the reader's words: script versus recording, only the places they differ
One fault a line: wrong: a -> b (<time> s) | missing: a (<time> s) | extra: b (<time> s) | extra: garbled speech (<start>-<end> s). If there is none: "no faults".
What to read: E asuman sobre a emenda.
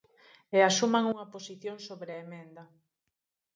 extra: unha posición (1.1 s)